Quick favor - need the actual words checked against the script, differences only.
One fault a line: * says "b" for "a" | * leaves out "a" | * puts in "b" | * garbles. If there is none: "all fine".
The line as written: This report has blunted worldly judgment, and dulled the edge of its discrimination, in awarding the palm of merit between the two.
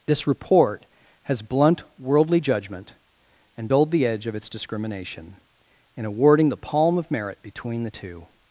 * says "blunt" for "blunted"